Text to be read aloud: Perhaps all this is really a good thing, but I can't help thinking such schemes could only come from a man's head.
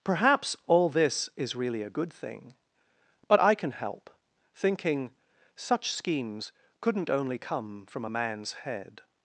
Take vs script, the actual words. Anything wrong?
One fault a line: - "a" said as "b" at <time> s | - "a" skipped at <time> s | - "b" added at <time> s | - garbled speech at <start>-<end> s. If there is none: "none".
- "can't" said as "can" at 3.5 s
- "could" said as "couldn't" at 6.8 s